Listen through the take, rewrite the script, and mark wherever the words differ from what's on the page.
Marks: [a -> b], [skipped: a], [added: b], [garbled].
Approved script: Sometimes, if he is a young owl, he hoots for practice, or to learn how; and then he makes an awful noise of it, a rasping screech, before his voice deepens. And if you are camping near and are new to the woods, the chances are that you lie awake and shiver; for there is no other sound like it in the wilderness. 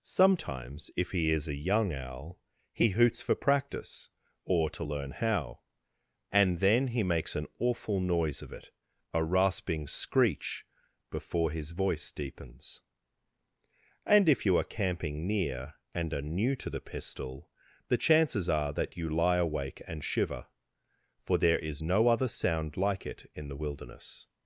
Sometimes, if he is a young owl, he hoots for practice, or to learn how; and then he makes an awful noise of it, a rasping screech, before his voice deepens. And if you are camping near and are new to the [woods, -> pistol] the chances are that you lie awake and shiver; for there is no other sound like it in the wilderness.